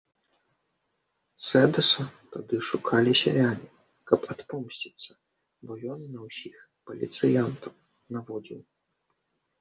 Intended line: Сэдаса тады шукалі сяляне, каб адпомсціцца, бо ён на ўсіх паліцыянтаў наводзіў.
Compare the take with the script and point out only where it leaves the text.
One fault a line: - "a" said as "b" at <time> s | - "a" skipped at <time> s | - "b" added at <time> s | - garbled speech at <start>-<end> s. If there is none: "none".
none